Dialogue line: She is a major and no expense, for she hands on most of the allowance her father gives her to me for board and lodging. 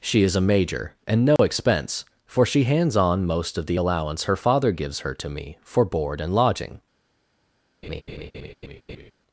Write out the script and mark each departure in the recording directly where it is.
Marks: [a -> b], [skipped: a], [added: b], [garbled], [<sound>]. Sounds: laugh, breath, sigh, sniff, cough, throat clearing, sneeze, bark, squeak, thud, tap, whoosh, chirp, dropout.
She is a major and no [dropout] expense, for she hands on most of the allowance her father gives her to me for board and lodging. [laugh]